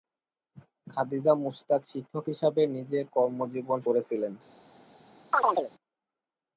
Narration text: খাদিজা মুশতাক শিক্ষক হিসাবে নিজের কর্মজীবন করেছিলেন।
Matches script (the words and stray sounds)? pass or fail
fail